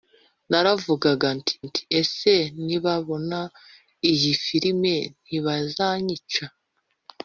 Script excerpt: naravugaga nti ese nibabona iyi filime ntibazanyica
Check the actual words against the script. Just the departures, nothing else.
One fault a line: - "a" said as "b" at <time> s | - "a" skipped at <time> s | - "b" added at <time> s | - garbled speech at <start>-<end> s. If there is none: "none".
- "nti" added at 1.6 s